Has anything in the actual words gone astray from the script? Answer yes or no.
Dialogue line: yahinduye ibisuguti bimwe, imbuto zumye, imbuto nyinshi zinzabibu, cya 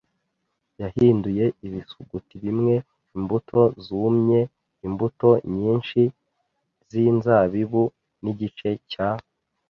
yes